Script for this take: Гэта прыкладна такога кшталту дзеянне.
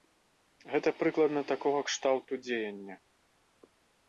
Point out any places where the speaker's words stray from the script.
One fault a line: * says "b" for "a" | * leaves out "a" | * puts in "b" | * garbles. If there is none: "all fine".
all fine